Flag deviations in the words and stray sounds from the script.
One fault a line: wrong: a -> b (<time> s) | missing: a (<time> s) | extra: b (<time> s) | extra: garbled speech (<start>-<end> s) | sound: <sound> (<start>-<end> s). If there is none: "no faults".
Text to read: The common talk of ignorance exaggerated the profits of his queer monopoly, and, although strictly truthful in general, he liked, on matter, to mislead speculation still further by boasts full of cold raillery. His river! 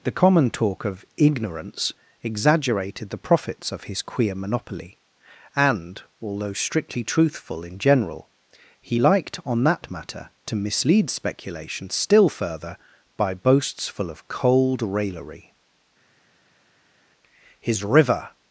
extra: that (9.7 s)